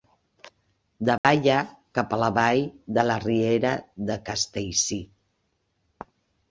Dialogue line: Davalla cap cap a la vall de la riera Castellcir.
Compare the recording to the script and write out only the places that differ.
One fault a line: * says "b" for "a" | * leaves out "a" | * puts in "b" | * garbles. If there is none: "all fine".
* leaves out "cap"
* puts in "de"